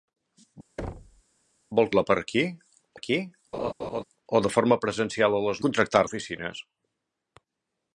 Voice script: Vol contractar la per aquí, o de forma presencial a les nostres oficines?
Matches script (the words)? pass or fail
fail